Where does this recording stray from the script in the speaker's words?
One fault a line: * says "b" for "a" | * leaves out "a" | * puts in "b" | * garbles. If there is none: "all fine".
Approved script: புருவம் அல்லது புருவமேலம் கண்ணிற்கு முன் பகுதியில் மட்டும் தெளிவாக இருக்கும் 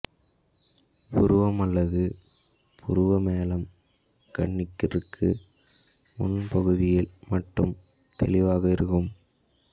all fine